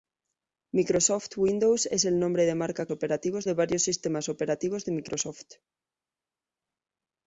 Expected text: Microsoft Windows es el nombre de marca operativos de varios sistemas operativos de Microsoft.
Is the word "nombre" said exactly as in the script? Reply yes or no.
yes